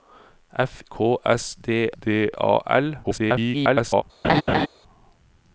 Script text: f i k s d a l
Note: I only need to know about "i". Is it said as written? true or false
false